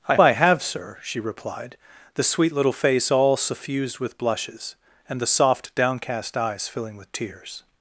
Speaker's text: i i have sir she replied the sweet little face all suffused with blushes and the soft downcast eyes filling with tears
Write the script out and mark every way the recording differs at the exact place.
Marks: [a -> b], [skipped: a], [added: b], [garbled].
i i have sir she replied the sweet little face all suffused with blushes and the soft downcast eyes filling with tears